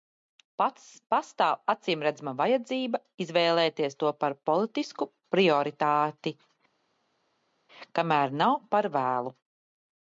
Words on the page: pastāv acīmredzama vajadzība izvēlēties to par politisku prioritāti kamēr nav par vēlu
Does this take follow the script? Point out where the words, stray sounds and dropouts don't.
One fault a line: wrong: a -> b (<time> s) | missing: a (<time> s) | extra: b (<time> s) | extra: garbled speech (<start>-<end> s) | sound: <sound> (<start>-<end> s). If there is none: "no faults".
no faults